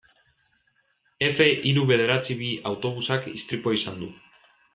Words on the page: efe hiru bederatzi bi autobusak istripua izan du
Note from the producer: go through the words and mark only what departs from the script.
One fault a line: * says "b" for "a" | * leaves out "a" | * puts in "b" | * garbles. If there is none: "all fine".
all fine